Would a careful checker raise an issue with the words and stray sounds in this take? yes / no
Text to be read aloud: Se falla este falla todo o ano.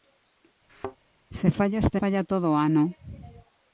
yes